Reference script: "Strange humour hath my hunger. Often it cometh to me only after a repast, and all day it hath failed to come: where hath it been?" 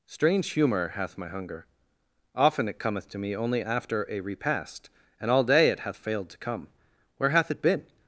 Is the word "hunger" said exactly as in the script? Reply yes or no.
yes